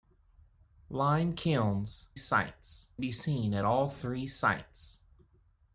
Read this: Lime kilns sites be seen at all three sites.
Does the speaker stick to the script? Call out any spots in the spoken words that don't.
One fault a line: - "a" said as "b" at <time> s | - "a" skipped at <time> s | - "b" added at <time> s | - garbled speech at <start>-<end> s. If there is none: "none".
none